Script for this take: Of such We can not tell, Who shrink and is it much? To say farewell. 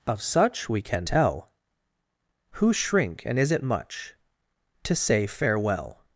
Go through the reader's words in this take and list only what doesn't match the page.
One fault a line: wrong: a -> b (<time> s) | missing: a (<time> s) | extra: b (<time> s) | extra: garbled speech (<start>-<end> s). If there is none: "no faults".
missing: not (1.1 s)